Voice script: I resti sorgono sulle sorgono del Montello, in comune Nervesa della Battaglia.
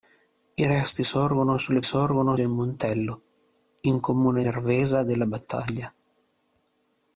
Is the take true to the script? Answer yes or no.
yes